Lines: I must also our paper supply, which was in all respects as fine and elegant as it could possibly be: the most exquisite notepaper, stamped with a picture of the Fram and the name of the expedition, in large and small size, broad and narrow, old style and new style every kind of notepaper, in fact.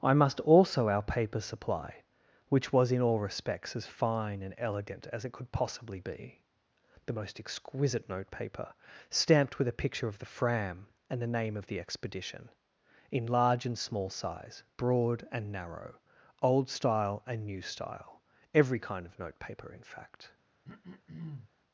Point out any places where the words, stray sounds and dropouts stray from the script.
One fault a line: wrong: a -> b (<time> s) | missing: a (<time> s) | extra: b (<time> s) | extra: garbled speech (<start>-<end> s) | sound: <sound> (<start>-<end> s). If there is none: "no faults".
sound: throat clearing (20.6-21.5 s)